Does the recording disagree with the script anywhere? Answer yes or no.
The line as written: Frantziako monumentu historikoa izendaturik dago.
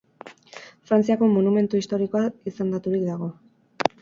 no